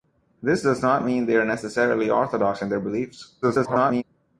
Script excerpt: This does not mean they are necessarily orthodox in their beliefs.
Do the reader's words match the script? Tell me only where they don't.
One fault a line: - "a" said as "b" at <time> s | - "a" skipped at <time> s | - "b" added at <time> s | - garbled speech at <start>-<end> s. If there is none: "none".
- garbled speech at 3.4-4.0 s